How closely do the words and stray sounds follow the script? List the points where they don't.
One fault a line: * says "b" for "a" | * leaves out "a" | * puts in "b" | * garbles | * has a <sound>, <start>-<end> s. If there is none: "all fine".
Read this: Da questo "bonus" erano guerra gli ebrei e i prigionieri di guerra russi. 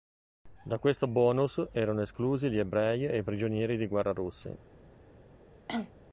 * says "esclusi" for "guerra"
* has a cough, 5.7-5.9 s